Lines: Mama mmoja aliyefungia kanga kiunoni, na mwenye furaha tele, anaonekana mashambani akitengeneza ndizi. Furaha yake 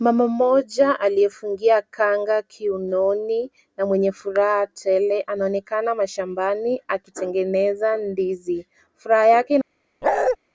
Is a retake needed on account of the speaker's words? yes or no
no